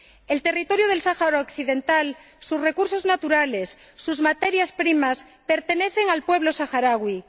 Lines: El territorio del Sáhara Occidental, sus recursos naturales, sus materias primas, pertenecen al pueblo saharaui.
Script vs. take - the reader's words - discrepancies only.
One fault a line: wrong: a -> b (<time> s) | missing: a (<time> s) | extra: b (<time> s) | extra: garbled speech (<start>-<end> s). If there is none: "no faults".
no faults